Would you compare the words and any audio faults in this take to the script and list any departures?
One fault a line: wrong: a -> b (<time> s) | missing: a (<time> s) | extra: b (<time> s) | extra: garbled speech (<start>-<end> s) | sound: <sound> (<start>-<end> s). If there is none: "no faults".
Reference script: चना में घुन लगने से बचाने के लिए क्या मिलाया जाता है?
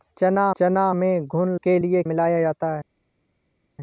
extra: चना (0.6 s)
missing: लगने से बचाने (1.6 s)
missing: क्या (2.0 s)